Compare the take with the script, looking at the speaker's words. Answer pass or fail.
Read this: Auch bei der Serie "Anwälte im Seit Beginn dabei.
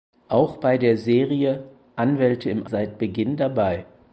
pass